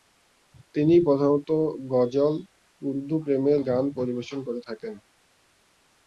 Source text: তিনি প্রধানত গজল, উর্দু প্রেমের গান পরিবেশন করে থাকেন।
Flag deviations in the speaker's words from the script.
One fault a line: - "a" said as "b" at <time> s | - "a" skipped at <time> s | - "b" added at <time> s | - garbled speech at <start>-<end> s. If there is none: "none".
none